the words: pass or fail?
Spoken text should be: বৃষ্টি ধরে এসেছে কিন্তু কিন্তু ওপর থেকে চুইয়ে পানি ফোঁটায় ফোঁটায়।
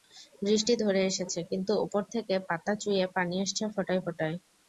fail